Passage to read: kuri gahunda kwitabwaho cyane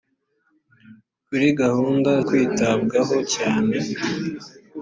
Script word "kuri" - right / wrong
right